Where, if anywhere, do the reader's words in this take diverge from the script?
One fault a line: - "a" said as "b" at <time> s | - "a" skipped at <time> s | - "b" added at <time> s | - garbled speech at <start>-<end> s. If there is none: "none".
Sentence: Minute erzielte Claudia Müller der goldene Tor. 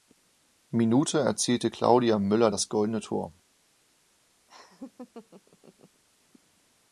- "der" said as "das" at 2.5 s